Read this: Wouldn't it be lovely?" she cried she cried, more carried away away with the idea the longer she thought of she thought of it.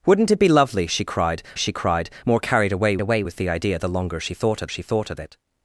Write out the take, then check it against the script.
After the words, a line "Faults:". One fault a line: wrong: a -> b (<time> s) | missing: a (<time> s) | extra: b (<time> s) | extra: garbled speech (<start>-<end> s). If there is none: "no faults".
Wouldn't it be lovely?" she cried she cried, more carried away away with the idea the longer she thought of she thought of it.
Faults:
no faults